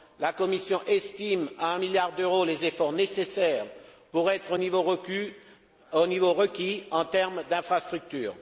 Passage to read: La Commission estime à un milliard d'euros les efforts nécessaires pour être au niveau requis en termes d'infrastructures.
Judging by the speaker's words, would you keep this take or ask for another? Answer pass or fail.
pass